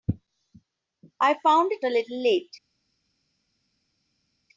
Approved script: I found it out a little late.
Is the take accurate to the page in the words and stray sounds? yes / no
no